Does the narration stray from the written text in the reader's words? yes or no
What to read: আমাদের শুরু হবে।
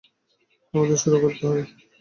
yes